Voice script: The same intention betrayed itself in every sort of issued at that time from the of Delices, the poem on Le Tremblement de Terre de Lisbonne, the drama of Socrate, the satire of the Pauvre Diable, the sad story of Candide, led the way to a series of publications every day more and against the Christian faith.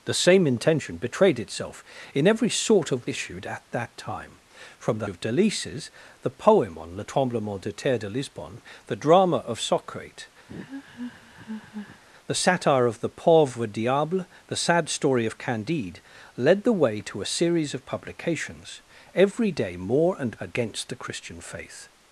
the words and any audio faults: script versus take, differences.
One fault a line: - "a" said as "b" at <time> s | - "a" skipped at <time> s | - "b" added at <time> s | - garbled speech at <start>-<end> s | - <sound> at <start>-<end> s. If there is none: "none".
- laugh at 10.5-12.0 s